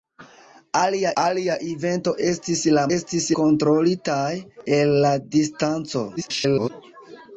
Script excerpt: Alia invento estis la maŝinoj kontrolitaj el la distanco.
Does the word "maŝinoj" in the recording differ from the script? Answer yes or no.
yes